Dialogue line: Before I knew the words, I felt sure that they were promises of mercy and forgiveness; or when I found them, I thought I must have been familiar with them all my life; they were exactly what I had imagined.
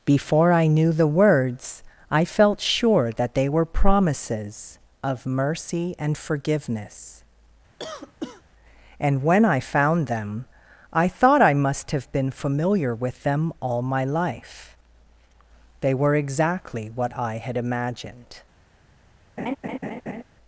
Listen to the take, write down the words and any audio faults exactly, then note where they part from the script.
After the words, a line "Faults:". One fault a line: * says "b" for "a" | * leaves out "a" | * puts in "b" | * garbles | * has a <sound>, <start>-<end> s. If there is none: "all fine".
Before I knew the words, I felt sure that they were promises of mercy and forgiveness; and when I found them, I thought I must have been familiar with them all my life; they were exactly what I had imagined.
Faults:
* has a cough, 7.8-8.4 s
* says "and" for "or"
* has a laugh, 19.4-20.2 s